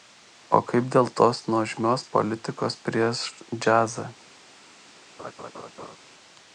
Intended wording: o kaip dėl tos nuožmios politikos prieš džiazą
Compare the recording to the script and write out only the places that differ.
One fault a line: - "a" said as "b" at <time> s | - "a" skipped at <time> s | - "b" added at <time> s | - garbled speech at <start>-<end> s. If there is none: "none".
none